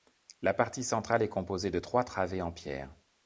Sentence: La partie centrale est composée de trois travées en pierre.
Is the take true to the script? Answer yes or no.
yes